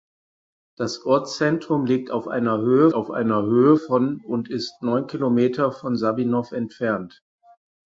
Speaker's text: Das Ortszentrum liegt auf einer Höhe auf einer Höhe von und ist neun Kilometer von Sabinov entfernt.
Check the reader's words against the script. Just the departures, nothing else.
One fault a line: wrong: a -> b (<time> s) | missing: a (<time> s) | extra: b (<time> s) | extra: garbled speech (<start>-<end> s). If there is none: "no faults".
no faults